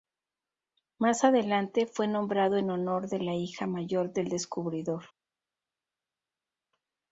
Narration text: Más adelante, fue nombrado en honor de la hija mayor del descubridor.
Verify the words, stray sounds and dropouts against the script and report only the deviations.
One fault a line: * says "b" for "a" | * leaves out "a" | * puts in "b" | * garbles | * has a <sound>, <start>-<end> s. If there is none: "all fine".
all fine